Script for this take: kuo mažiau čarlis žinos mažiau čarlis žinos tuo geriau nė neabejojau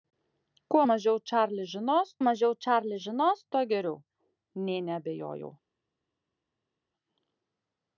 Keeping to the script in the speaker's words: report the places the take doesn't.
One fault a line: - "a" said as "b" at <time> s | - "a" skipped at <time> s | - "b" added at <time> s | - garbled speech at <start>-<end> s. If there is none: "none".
none